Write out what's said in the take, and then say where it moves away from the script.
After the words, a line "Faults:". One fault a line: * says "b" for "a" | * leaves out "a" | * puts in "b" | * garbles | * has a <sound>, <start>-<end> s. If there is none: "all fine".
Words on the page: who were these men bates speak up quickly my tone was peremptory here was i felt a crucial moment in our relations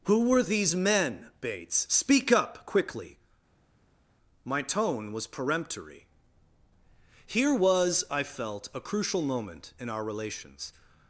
who were these men bates speak up quickly my tone was peremptory here was i felt a crucial moment in our relations
Faults:
all fine